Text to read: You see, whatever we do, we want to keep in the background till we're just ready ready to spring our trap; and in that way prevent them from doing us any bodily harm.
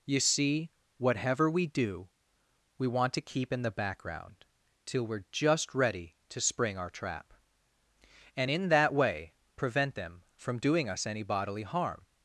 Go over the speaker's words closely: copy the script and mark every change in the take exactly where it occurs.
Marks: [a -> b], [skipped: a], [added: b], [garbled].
You see, whatever we do, we want to keep in the background till we're just ready [skipped: ready] to spring our trap; and in that way prevent them from doing us any bodily harm.